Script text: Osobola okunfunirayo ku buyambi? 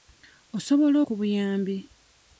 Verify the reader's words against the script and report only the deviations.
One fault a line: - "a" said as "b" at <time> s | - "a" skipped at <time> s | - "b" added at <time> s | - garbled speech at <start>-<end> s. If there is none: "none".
- "okunfunirayo" skipped at 1.0 s